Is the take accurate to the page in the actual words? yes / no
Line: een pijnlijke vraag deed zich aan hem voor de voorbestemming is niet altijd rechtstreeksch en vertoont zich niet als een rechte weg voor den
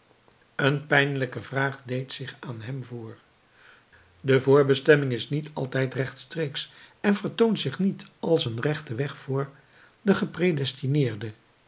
yes